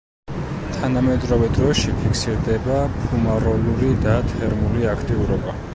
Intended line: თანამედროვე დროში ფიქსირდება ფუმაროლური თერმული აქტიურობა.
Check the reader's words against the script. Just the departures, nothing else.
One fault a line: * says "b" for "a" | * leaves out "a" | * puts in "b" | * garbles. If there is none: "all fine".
* puts in "და"